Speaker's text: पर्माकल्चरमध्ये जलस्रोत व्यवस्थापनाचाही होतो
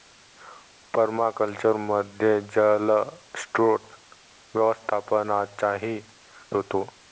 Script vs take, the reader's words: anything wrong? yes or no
no